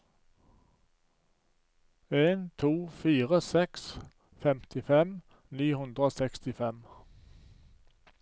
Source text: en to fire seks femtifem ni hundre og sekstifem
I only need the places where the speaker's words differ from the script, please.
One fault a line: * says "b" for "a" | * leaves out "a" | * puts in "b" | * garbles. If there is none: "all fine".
all fine